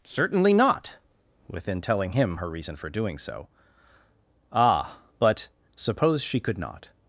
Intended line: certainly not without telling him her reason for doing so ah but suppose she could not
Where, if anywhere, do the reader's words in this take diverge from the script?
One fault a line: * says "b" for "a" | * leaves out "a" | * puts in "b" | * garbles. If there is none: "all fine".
* says "within" for "without"